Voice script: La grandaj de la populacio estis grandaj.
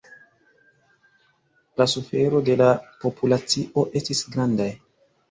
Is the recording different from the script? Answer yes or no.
yes